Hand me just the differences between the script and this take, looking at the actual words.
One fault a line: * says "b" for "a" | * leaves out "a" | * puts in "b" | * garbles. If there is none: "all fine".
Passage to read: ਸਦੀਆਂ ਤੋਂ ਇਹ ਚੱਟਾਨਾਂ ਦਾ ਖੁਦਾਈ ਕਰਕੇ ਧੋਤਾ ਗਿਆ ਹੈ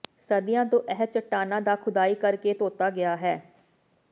all fine